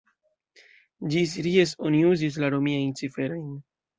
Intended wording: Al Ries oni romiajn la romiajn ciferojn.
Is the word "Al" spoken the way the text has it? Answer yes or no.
no